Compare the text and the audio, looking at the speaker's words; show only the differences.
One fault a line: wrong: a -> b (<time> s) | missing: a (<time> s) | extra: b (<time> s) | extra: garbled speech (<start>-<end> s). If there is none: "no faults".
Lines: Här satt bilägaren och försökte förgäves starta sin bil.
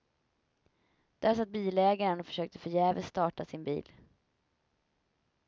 wrong: Här -> Där (1.2 s)